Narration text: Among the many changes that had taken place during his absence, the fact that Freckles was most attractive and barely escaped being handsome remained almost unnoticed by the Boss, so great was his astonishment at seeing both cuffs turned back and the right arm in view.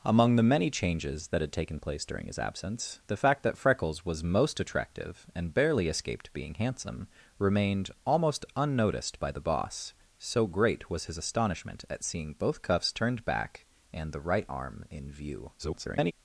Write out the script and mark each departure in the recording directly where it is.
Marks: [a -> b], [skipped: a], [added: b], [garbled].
Among the many changes that had taken place during his absence, the fact that Freckles was most attractive and barely escaped being handsome remained almost unnoticed by the Boss, so great was his astonishment at seeing both cuffs turned back and the right arm in view. [garbled]